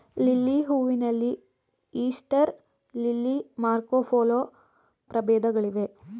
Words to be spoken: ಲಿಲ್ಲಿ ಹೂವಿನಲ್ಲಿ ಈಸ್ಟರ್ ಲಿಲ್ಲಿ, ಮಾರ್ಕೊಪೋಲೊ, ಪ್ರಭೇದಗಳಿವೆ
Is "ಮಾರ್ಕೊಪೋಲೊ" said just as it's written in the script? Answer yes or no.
yes